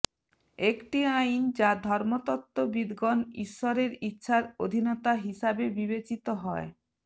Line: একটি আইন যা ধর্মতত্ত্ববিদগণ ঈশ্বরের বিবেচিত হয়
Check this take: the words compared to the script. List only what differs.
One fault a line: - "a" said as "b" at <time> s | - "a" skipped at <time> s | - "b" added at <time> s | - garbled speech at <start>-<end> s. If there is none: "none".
- "ইচ্ছার অধীনতা হিসাবে" added at 4.0 s